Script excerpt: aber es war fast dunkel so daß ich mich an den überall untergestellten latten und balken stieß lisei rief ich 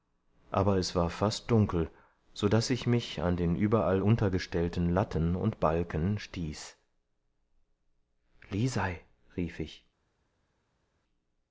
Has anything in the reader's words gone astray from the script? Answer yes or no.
no